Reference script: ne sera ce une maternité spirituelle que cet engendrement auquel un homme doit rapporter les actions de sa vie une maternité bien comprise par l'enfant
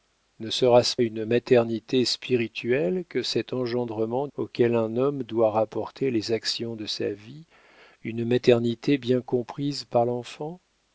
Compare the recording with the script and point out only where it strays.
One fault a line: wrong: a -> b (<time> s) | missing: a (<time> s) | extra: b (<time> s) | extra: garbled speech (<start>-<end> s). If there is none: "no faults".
no faults